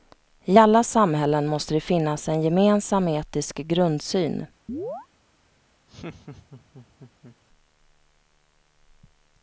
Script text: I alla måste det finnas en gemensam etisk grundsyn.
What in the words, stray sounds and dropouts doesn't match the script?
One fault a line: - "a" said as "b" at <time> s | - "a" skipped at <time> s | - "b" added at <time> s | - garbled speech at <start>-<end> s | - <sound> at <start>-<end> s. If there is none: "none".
- "samhällen" added at 0.8 s
- chirp at 4.7-5.1 s
- laugh at 5.9-7.4 s